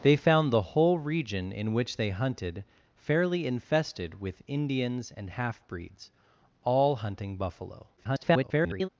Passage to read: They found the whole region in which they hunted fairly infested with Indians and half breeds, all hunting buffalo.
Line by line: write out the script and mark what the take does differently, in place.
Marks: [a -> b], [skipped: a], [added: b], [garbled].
They found the whole region in which they hunted fairly infested with Indians and half breeds, all hunting buffalo. [garbled]